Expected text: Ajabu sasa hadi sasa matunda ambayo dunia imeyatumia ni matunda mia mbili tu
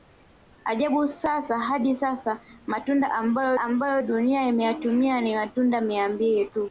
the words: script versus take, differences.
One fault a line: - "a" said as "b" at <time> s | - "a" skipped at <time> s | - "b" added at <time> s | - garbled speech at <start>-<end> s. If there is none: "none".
- "ambayo" added at 3.6 s